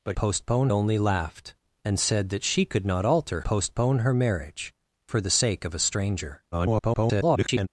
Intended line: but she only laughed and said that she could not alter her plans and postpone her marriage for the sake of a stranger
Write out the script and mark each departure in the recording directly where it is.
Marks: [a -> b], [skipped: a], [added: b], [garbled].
but [she -> postpone] only laughed and said that she could not alter [skipped: her plans and] postpone her marriage for the sake of a stranger [garbled]